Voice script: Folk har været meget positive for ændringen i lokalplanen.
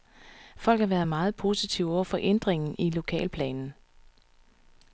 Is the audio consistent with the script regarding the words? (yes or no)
no